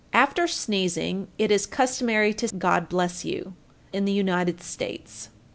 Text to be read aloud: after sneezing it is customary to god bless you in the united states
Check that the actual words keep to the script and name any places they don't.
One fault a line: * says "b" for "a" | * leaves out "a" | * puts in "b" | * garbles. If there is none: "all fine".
all fine